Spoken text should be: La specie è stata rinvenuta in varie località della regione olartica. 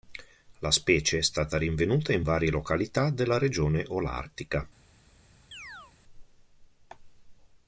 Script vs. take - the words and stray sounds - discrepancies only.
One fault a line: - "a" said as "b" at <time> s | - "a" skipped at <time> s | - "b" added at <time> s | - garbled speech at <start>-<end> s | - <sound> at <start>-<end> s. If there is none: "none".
- chirp at 5.5-5.9 s